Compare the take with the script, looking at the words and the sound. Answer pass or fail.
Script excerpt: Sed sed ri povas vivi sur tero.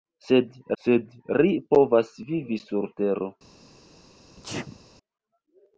fail